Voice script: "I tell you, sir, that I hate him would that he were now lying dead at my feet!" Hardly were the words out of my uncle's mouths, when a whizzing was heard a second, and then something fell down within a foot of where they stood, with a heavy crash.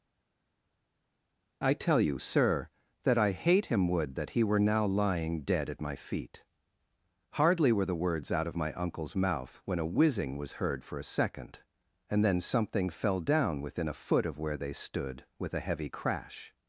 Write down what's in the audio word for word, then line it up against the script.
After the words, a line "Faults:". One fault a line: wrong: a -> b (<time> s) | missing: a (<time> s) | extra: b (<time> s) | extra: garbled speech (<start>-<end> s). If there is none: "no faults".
"I tell you, sir, that I hate him would that he were now lying dead at my feet!" Hardly were the words out of my uncle's mouth, when a whizzing was heard for a second, and then something fell down within a foot of where they stood, with a heavy crash.
Faults:
wrong: mouths -> mouth (9.1 s)
extra: for (10.8 s)